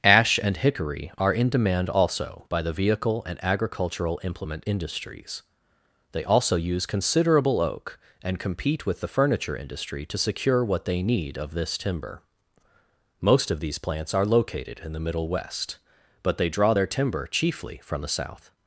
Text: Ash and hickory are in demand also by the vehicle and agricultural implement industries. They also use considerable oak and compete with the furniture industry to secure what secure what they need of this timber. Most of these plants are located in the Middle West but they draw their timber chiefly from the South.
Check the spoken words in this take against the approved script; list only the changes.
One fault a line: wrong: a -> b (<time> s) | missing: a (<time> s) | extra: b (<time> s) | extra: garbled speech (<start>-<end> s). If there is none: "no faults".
missing: secure what (10.8 s)